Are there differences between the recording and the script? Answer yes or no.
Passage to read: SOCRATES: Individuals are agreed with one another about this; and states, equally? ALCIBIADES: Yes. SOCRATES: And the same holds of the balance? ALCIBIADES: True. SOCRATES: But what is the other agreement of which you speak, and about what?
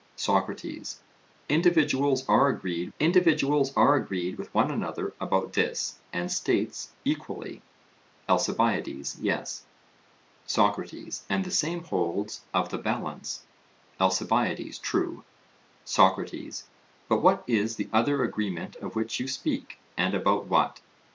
yes